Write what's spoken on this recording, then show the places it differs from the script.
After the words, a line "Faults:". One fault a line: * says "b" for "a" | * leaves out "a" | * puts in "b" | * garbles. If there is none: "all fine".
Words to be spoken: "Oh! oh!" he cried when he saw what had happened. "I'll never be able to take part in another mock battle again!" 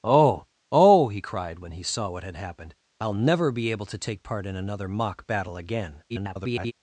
"Oh! oh!" he cried when he saw what had happened. "I'll never be able to take part in another mock battle again!" [garbled]
Faults:
* garbles